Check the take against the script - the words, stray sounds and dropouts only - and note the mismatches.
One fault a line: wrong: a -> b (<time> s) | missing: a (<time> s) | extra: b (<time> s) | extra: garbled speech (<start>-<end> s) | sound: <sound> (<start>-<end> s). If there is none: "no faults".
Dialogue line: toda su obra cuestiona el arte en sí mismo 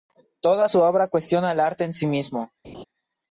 sound: laugh (2.6-2.8 s)